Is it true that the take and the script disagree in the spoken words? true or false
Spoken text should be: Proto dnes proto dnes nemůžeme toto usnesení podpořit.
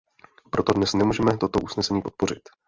true